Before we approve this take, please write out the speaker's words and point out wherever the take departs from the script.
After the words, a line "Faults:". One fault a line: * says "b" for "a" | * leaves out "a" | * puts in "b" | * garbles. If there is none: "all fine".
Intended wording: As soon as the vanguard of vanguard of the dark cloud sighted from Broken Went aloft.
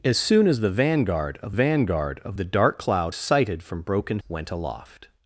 As soon as the vanguard of vanguard of the dark cloud sighted from Broken Went aloft.
Faults:
all fine